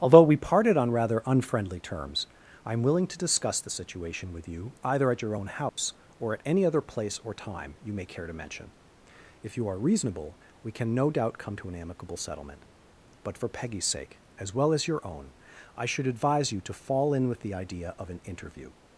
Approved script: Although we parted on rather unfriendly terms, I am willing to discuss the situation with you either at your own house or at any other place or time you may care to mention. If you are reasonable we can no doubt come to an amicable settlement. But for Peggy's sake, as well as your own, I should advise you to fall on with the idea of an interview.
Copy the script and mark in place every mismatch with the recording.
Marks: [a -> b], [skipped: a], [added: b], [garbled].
Although we parted on rather unfriendly terms, I am willing to discuss the situation with you either at your own house or at any other place or time you may care to mention. If you are reasonable we can no doubt come to an amicable settlement. But for Peggy's sake, as well as your own, I should advise you to fall [on -> in] with the idea of an interview.